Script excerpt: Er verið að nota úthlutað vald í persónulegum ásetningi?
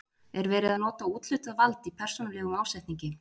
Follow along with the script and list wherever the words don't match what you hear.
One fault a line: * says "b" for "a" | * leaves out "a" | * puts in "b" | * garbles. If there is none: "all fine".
all fine